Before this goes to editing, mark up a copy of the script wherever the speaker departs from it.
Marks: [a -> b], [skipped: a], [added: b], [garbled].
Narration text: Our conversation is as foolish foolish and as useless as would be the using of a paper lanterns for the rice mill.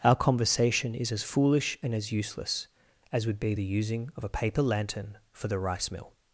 Our conversation is as foolish [skipped: foolish] and as useless as would be the using of a paper [lanterns -> lantern] for the rice mill.